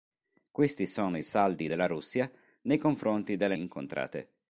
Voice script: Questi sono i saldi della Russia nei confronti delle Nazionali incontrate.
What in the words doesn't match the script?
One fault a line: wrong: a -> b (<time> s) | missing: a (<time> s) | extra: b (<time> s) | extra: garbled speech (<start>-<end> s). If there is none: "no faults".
missing: Nazionali (3.6 s)